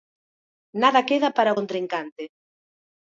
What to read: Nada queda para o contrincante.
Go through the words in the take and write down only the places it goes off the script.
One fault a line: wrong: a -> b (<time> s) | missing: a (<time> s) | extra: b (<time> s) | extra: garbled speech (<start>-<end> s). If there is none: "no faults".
no faults